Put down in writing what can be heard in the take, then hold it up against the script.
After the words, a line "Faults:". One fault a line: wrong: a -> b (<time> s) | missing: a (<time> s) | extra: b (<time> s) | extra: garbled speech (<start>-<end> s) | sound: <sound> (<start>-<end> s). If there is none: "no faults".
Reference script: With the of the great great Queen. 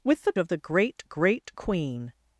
With the of the great great Queen.
Faults:
no faults